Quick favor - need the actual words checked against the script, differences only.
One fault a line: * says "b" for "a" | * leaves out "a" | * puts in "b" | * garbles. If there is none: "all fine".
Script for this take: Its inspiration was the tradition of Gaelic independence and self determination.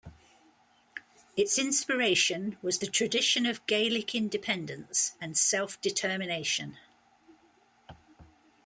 all fine